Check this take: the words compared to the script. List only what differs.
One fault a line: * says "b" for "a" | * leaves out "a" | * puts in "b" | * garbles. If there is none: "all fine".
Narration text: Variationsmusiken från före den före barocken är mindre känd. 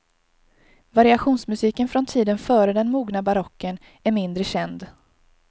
* puts in "tiden"
* says "mogna" for "före"